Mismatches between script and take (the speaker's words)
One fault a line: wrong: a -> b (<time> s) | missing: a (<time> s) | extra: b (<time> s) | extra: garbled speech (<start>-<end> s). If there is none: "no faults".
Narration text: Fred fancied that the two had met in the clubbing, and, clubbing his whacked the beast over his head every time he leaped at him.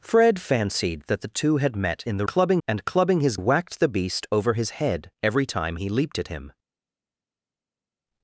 no faults